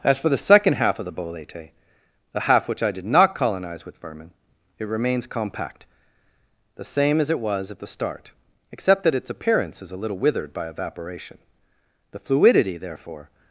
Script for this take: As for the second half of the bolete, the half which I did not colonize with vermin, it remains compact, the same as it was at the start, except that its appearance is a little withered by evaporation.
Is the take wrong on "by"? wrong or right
right